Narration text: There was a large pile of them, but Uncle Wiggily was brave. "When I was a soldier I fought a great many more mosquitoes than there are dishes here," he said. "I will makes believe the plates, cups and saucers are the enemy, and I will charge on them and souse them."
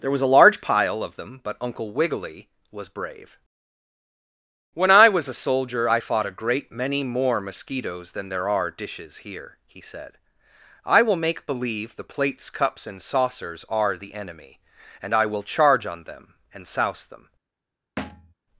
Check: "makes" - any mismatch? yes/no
yes